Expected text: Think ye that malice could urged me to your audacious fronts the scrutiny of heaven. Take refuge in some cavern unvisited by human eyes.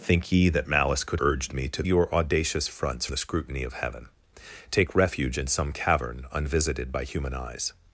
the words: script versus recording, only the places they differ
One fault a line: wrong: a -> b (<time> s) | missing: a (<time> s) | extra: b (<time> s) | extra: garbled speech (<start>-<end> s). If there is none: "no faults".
no faults